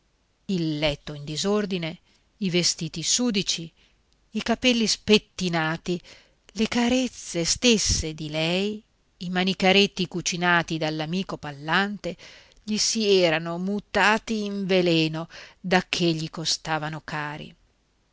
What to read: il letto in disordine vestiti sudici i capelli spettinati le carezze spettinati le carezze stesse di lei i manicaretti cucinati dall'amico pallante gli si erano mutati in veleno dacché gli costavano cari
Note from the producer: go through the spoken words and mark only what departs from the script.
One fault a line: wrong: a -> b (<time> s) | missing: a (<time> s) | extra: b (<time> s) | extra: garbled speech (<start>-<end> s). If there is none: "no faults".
extra: i (2.4 s)
missing: spettinati le carezze (7.4 s)